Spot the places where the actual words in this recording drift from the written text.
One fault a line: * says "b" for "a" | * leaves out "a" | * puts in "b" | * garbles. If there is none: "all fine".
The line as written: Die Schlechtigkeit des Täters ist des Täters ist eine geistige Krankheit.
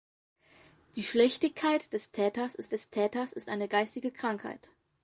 all fine